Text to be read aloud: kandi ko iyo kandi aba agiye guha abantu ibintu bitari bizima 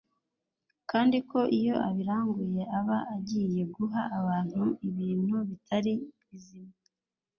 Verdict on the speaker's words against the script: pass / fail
fail